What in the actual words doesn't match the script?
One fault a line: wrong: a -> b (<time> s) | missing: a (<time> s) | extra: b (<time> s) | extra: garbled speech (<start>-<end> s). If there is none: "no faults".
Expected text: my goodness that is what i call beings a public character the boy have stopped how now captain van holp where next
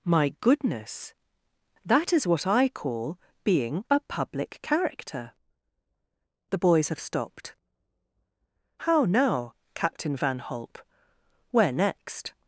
wrong: beings -> being (3.4 s)
wrong: boy -> boys (6.6 s)